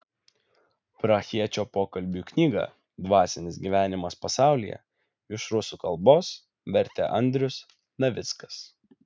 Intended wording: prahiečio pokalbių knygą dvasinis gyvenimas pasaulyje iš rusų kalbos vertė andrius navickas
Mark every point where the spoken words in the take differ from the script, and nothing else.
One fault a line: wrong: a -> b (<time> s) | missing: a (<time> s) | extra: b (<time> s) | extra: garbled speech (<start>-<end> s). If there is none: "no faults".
no faults